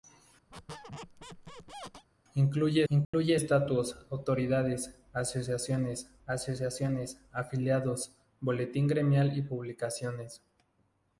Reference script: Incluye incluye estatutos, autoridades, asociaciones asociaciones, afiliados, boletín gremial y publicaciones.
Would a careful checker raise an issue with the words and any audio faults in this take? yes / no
yes